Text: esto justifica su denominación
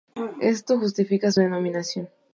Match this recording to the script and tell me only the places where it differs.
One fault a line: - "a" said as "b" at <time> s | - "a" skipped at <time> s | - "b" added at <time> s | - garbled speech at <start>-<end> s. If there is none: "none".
none